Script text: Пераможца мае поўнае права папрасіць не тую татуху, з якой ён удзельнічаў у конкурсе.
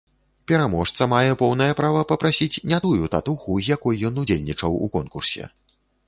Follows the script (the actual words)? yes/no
yes